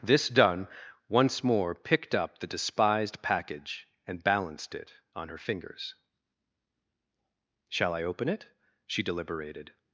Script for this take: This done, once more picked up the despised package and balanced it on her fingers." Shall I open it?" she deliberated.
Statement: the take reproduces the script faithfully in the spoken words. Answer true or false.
true